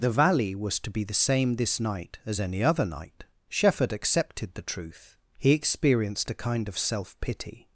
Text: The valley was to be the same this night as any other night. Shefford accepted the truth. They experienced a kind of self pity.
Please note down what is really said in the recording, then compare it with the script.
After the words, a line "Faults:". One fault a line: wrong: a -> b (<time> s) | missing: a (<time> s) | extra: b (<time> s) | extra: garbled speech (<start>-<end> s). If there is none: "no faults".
The valley was to be the same this night as any other night. Shefford accepted the truth. He experienced a kind of self pity.
Faults:
wrong: They -> He (5.4 s)